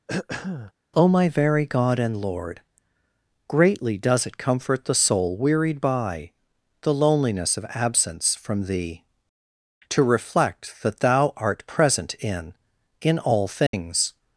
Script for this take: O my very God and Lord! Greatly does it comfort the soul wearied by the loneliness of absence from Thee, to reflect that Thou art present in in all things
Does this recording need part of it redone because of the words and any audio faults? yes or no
yes